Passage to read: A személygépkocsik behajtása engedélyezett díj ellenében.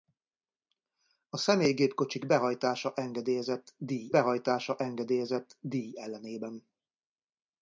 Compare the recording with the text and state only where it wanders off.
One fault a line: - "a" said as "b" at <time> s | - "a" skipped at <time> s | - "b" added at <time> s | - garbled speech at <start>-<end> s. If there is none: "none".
- "behajtása engedélyezett díj" added at 4.1 s